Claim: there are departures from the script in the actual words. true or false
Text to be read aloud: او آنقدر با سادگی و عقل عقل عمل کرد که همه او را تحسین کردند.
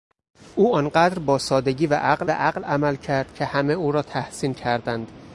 false